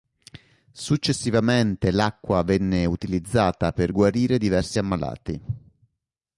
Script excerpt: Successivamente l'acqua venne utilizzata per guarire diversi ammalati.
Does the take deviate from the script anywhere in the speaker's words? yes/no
no